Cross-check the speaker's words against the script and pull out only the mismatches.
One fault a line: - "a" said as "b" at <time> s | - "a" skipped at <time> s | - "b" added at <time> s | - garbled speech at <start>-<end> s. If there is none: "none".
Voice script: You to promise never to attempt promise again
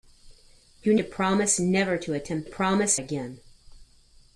none